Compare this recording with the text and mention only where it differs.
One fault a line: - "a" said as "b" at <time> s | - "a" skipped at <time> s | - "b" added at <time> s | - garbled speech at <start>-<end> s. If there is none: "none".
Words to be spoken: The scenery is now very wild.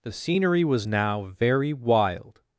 - "is" said as "was" at 0.6 s